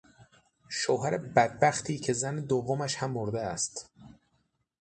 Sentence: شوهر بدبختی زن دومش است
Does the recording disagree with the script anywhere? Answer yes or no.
yes